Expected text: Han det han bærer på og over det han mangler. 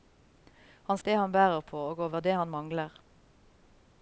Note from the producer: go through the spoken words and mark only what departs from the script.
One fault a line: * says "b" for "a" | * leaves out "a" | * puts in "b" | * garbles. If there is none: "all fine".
all fine